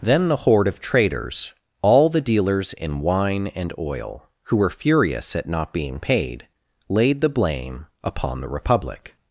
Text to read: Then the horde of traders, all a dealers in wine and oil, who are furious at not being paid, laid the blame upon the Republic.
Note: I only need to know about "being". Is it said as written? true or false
true